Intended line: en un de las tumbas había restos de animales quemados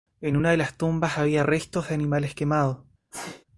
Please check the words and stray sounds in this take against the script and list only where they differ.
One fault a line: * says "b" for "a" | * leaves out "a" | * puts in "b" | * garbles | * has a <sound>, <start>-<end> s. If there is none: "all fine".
* says "una" for "un"
* has a sneeze, 3.1-3.4 s